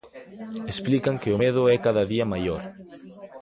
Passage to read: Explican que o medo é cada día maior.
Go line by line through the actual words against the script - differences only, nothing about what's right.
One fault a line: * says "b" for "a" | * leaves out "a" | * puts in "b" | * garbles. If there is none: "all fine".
all fine